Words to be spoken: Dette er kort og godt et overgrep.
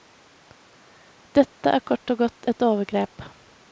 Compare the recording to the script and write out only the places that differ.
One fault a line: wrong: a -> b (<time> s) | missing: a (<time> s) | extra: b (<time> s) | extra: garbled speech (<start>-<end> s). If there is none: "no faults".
no faults